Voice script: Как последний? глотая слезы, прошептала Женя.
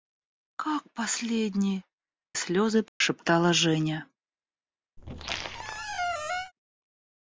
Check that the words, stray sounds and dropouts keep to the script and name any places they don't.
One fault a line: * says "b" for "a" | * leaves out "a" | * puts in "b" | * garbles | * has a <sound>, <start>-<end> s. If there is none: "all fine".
* leaves out "глотая"
* has a dropout, 2.9-3.0 s
* has a squeak, 5.0-6.5 s